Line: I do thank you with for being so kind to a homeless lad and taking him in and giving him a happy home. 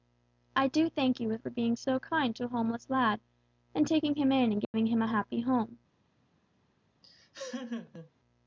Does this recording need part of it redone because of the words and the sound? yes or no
yes